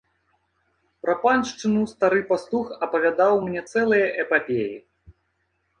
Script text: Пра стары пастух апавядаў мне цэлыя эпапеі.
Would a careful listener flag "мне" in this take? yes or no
no